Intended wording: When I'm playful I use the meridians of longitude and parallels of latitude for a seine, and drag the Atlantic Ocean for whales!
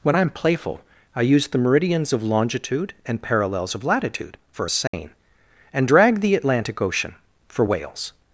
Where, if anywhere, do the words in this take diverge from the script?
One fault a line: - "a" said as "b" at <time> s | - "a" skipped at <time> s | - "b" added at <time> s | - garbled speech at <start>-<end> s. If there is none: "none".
none